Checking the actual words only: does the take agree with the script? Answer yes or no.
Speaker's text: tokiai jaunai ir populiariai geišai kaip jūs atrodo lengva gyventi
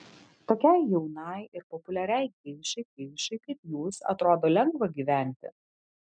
no